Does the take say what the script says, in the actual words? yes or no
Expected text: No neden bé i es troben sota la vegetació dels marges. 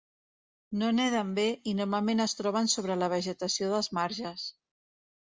no